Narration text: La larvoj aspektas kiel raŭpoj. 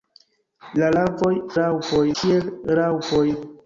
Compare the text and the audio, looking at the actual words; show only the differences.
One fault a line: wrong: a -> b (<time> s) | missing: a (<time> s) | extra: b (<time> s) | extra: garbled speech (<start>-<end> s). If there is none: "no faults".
wrong: aspektas -> raŭpoj (1.6 s)